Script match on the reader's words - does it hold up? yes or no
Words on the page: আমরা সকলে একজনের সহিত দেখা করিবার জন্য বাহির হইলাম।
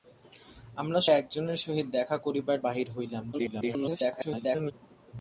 no